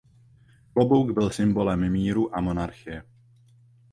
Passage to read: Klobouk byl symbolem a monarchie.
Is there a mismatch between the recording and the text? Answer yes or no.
yes